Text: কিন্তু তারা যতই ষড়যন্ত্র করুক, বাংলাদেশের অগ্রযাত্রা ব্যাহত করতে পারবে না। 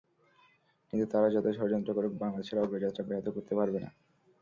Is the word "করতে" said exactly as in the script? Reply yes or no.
yes